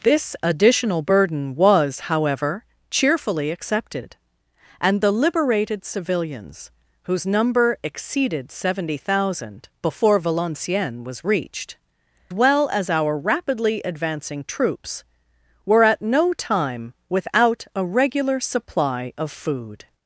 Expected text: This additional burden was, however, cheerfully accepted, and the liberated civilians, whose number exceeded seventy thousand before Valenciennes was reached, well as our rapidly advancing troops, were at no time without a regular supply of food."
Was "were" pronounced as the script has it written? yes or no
yes